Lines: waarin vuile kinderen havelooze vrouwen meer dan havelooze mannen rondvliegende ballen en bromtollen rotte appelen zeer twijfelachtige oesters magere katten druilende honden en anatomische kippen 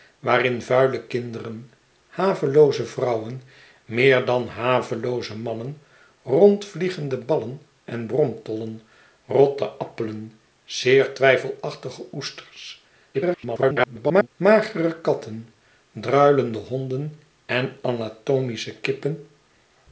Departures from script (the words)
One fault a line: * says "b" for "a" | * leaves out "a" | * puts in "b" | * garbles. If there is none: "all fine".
* garbles